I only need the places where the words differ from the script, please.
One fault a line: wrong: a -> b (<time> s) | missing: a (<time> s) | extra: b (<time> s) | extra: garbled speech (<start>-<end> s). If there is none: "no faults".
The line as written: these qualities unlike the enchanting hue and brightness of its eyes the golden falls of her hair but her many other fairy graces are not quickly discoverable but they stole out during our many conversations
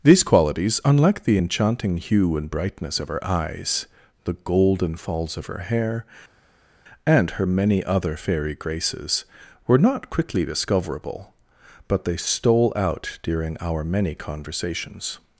wrong: its -> her (3.1 s)
wrong: but -> and (7.1 s)
wrong: are -> were (9.7 s)